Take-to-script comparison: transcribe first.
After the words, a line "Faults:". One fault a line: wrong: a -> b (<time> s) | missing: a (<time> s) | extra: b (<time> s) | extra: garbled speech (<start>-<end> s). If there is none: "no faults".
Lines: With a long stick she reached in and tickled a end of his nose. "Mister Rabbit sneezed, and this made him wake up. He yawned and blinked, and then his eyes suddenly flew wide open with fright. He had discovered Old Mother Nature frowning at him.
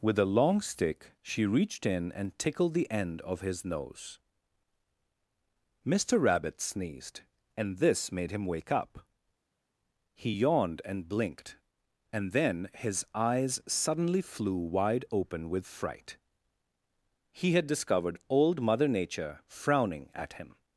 With a long stick she reached in and tickled the end of his nose. "Mister Rabbit sneezed, and this made him wake up. He yawned and blinked, and then his eyes suddenly flew wide open with fright. He had discovered Old Mother Nature frowning at him.
Faults:
wrong: a -> the (2.7 s)